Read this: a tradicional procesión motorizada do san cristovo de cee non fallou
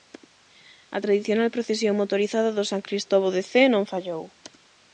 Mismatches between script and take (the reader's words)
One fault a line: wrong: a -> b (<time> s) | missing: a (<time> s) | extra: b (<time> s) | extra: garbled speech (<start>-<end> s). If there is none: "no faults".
no faults